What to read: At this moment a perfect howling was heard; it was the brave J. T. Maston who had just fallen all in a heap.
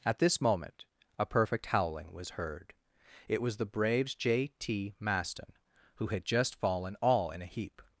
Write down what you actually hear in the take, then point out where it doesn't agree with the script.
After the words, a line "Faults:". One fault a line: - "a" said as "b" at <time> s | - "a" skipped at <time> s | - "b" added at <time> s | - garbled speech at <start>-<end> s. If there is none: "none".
At this moment a perfect howling was heard; it was the braves J. T. Maston who had just fallen all in a heap.
Faults:
- "brave" said as "braves" at 3.6 s